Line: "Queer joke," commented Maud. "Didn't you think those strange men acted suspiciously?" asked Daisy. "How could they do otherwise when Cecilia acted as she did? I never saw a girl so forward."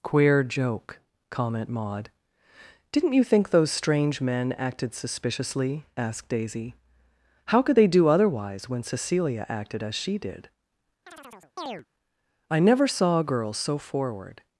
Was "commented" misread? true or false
true